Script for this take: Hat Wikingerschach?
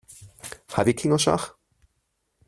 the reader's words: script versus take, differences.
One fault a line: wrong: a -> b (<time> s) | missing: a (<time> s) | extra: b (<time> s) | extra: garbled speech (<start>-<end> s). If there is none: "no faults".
no faults